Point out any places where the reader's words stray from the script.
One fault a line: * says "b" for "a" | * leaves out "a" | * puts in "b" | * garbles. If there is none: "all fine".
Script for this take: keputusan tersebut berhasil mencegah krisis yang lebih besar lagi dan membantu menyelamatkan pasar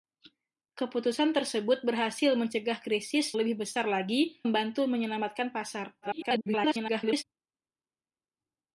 * leaves out "yang"
* leaves out "dan"
* garbles